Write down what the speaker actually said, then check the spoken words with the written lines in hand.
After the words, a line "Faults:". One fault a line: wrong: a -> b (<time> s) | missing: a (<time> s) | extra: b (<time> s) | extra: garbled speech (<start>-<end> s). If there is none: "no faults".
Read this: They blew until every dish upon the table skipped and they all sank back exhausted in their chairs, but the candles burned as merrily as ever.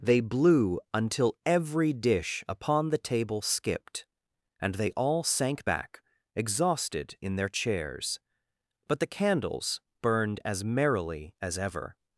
They blew until every dish upon the table skipped and they all sank back exhausted in their chairs, but the candles burned as merrily as ever.
Faults:
no faults